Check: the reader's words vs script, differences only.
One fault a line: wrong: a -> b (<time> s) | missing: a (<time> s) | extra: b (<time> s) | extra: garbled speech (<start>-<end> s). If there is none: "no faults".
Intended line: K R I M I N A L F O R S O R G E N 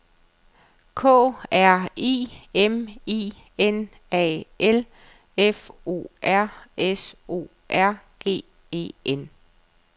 no faults